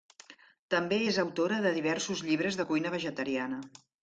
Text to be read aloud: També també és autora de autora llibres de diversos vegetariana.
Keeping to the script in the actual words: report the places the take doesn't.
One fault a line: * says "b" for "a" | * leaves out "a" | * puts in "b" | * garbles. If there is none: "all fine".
* leaves out "també"
* says "diversos" for "autora"
* says "cuina" for "diversos"